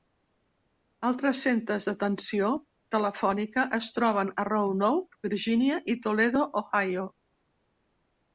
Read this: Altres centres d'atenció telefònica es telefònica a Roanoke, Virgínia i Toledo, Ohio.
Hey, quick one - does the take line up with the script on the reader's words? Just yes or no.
no